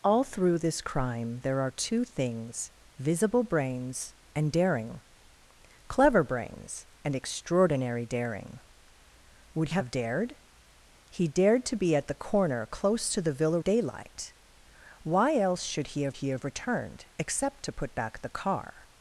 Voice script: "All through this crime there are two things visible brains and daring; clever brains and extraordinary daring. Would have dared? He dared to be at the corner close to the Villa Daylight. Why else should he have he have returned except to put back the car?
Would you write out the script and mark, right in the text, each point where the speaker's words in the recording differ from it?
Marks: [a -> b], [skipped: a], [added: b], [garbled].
"All through this crime there are two things visible brains and daring; clever brains and extraordinary daring. Would have dared? He dared to be at the corner close to the Villa Daylight. Why else should he have he have returned except to put back the car?